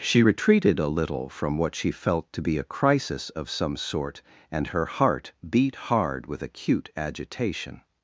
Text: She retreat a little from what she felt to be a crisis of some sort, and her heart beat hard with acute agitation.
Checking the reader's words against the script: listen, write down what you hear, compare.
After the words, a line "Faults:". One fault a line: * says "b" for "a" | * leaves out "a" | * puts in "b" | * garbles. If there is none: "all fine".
She retreated a little from what she felt to be a crisis of some sort, and her heart beat hard with acute agitation.
Faults:
* says "retreated" for "retreat"